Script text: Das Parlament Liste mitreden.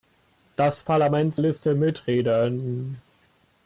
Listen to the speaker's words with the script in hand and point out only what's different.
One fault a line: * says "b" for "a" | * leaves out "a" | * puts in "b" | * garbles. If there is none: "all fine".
all fine